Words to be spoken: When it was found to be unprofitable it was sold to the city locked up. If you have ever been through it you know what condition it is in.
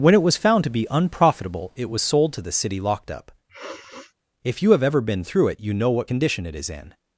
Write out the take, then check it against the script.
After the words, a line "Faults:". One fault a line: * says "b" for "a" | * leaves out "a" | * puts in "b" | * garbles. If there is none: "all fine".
When it was found to be unprofitable it was sold to the city locked up. If you have ever been through it you know what condition it is in.
Faults:
all fine